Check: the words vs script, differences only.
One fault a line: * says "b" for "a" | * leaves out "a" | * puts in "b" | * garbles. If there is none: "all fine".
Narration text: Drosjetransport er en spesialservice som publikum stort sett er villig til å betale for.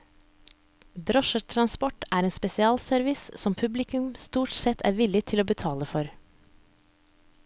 all fine